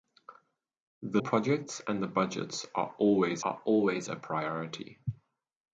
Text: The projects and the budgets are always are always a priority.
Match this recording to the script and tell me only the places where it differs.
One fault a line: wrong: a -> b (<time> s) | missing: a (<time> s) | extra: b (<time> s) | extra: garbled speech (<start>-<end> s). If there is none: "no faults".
no faults